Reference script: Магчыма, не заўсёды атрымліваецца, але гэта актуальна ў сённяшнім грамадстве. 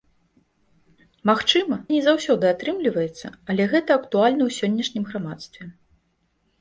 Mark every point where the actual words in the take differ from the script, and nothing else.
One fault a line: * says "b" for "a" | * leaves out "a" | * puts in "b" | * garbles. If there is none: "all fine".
all fine